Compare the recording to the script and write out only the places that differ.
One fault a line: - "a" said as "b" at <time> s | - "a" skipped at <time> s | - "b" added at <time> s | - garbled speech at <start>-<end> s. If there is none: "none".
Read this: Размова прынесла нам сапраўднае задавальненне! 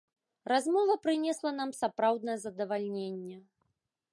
none